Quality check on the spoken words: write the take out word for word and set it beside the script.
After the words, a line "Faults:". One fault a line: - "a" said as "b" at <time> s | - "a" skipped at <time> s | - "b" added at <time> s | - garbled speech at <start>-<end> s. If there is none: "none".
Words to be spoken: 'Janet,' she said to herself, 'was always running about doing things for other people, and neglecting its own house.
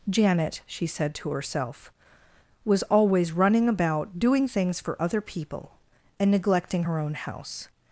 'Janet,' she said to herself, 'was always running about doing things for other people, and neglecting her own house.
Faults:
- "its" said as "her" at 6.8 s